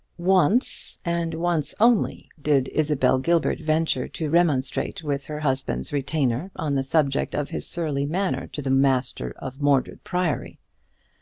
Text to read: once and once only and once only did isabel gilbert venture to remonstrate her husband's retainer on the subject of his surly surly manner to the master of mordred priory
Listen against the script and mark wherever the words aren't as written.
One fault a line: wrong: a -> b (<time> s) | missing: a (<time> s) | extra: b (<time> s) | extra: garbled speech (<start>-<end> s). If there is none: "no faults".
missing: and once only (2.3 s)
extra: with (5.0 s)
missing: surly (8.1 s)